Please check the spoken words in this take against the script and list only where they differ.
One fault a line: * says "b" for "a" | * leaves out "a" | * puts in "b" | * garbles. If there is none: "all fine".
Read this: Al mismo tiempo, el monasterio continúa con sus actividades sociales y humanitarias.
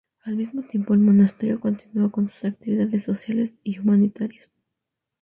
all fine